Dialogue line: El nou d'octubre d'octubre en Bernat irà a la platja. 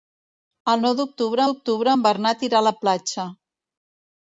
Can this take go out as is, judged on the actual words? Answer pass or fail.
pass